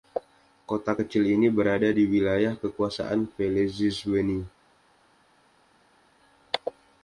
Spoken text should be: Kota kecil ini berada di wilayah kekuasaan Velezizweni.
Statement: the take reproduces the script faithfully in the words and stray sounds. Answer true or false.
true